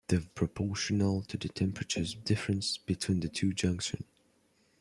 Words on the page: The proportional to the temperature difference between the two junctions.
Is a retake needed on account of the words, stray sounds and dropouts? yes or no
no